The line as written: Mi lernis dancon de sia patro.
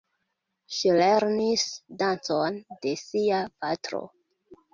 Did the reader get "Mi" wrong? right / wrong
wrong